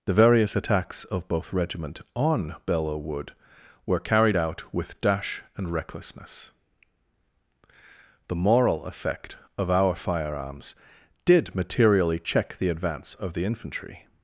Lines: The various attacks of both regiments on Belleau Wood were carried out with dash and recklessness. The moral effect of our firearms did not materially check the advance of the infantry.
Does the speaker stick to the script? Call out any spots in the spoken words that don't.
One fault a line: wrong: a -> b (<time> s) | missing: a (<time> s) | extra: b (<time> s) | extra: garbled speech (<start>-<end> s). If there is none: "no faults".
wrong: regiments -> regiment (1.5 s)
missing: not (11.5 s)